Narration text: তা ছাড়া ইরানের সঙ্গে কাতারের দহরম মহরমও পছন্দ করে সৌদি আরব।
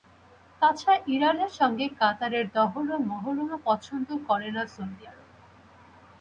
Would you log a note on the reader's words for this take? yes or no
yes